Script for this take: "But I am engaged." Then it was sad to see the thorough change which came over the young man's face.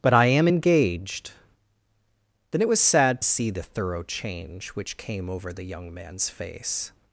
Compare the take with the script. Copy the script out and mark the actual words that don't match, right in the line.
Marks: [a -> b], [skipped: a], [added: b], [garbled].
"But I am engaged." Then it was sad [skipped: to] see the thorough change which came over the young man's face.